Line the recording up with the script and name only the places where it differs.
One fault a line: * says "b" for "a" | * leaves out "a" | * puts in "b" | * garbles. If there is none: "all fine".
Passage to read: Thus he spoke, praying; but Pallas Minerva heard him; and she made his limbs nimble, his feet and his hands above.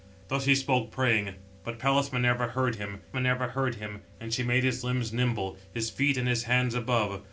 * puts in "Minerva heard him"